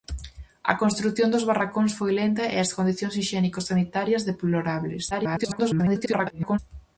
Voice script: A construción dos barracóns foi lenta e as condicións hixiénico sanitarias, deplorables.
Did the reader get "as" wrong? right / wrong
right